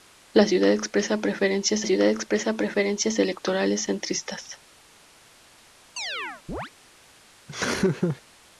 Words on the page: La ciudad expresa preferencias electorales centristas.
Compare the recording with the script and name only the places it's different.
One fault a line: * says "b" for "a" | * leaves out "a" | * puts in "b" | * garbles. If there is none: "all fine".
* puts in "ciudad expresa preferencias"